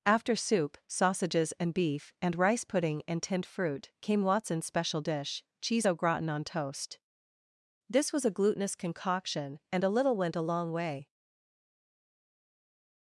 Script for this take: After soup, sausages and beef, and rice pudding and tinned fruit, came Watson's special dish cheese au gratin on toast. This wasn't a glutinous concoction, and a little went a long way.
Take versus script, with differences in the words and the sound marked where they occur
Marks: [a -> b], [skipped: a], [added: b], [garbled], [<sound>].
After soup, sausages and beef, and rice pudding and tinned fruit, came Watson's special dish cheese au gratin on toast. This [wasn't -> was] a glutinous concoction, and a little went a long way.